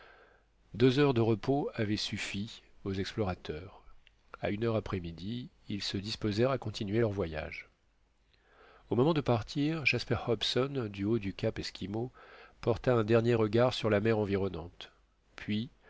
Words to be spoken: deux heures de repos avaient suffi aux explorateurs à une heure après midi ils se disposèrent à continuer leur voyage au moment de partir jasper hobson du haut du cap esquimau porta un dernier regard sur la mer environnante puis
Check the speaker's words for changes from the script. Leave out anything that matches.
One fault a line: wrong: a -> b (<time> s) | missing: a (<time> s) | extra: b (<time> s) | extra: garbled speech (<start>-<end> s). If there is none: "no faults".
no faults